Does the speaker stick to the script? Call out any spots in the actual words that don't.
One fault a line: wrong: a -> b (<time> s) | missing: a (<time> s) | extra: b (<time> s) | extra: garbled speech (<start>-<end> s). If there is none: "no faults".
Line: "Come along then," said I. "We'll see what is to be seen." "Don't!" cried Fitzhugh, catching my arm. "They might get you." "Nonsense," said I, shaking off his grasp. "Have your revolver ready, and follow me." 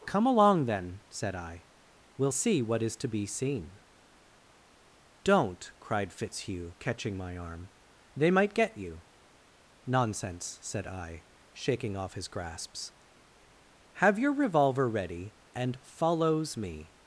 wrong: grasp -> grasps (12.3 s)
wrong: follow -> follows (15.8 s)